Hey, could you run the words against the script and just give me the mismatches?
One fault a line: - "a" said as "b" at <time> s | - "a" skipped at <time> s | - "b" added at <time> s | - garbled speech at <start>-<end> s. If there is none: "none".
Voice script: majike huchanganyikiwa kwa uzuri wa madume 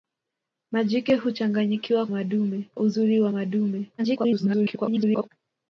- "kwa" said as "madume" at 2.1 s
- garbled speech at 4.0-5.3 s